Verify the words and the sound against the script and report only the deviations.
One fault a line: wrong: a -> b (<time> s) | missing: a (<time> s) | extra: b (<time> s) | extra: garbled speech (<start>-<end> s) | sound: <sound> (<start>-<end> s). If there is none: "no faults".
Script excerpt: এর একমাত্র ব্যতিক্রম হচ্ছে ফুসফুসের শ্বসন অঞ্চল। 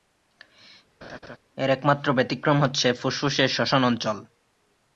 sound: laugh (1.0-1.4 s)